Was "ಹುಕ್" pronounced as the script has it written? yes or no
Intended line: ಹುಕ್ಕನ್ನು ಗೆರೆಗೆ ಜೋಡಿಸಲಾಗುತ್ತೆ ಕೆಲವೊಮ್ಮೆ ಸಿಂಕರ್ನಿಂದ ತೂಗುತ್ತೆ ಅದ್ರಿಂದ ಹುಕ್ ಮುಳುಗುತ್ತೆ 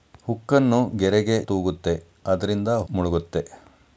no